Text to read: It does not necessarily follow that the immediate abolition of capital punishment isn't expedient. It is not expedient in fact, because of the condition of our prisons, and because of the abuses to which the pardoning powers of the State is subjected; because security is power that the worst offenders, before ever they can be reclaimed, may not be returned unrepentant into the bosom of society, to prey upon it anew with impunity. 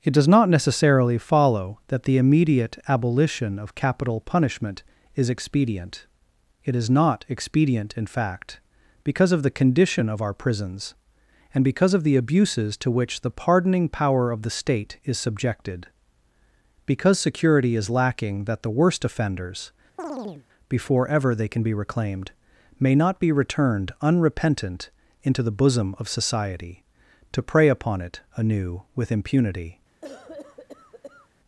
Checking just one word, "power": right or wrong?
wrong